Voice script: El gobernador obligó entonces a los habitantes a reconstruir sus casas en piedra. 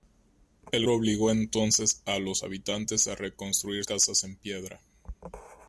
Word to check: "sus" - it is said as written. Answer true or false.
false